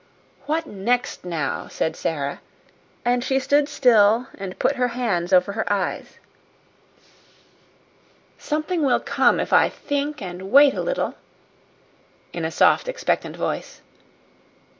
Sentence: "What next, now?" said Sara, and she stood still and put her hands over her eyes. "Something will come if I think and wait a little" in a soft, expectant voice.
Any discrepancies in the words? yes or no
no